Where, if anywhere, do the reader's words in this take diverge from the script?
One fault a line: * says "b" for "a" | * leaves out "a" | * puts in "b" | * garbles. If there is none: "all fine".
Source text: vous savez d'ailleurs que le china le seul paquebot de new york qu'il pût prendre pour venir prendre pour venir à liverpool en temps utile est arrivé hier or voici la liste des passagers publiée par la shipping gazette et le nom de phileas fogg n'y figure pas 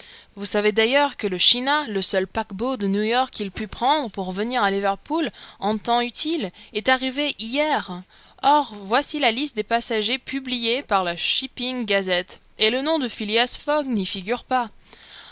* leaves out "prendre pour venir"